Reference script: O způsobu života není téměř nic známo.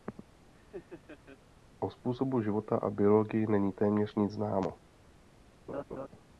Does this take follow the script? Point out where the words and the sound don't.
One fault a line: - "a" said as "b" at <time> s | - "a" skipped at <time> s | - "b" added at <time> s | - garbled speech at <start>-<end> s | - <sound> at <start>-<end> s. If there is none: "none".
- laugh at 0.5-1.4 s
- "a biologii" added at 2.8 s
- laugh at 5.7-6.1 s